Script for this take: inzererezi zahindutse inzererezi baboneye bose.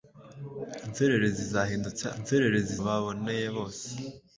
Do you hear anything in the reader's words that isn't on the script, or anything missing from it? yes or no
no